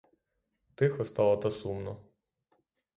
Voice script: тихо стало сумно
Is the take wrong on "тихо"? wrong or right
right